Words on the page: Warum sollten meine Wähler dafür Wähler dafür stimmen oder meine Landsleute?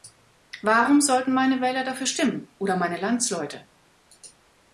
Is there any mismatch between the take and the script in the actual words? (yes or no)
yes